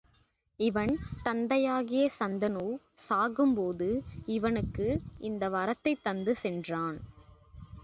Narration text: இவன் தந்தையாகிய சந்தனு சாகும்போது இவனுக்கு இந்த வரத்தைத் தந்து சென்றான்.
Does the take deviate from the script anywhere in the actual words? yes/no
no